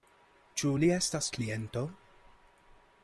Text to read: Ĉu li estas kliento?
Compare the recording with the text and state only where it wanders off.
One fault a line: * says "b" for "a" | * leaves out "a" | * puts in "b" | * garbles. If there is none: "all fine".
all fine